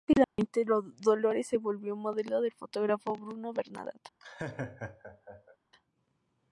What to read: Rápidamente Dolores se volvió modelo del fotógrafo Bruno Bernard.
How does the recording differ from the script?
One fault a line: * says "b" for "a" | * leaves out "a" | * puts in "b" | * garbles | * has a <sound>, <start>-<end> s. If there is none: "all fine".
* has a dropout, 0.2-0.4 s
* has a laugh, 4.2-5.6 s